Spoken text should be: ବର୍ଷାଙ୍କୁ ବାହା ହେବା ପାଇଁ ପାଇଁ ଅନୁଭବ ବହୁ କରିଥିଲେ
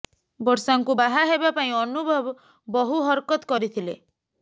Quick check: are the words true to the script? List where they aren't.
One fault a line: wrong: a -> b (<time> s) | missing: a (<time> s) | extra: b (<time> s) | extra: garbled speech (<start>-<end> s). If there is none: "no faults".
missing: ପାଇଁ (1.7 s)
extra: ହରକତ (3.1 s)